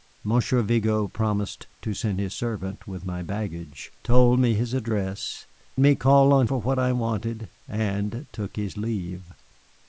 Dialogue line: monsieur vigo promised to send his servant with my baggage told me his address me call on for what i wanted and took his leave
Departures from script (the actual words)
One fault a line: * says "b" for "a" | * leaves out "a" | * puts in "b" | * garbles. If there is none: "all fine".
all fine